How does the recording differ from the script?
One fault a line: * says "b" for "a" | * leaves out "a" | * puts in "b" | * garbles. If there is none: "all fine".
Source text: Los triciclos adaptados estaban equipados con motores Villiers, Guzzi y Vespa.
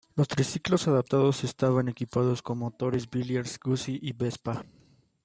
all fine